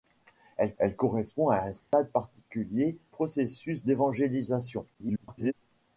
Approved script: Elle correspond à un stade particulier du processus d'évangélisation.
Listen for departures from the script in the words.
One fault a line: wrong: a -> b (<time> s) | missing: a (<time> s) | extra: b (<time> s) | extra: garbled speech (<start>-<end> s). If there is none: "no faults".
extra: elle (0.8 s)
missing: du (3.0 s)
extra: garbled speech (4.9-5.5 s)